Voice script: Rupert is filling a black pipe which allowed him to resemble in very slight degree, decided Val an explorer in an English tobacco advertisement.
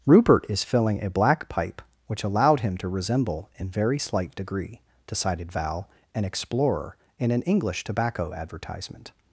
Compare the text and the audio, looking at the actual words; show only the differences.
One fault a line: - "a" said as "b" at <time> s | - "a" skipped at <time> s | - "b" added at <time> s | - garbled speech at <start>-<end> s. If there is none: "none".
none